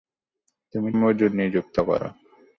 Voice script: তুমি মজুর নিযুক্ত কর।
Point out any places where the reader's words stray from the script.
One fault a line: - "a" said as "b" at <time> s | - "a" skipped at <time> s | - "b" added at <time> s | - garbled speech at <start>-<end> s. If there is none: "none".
none